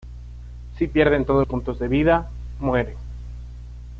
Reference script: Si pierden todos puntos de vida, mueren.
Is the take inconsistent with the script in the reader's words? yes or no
no